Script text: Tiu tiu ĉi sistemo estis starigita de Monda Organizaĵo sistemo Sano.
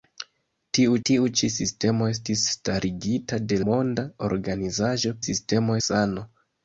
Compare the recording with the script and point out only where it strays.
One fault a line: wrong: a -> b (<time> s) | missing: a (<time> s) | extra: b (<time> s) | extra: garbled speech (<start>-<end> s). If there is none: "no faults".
no faults